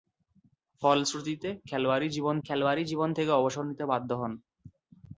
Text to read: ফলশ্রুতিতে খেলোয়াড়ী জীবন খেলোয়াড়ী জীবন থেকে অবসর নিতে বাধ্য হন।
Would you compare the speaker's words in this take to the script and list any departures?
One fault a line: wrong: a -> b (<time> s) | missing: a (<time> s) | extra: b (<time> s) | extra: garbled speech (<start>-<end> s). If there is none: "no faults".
no faults